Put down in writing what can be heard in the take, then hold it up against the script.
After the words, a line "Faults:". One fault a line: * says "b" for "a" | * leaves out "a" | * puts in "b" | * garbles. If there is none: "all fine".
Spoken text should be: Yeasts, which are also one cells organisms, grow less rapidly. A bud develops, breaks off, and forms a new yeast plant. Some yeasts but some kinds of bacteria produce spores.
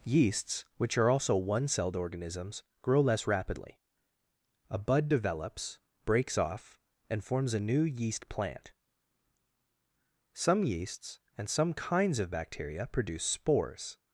Yeasts, which are also one celled organisms, grow less rapidly. A bud develops, breaks off, and forms a new yeast plant. Some yeasts and some kinds of bacteria produce spores.
Faults:
* says "celled" for "cells"
* says "and" for "but"